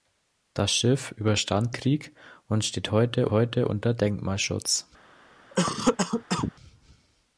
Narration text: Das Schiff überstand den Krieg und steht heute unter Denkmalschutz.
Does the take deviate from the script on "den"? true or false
true